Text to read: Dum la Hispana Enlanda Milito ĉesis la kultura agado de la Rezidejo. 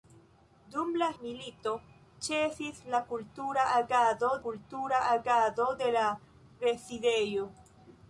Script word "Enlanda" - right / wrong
wrong